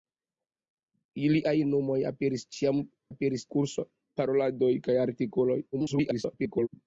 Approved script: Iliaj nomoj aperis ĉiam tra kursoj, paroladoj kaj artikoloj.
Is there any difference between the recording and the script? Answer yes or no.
yes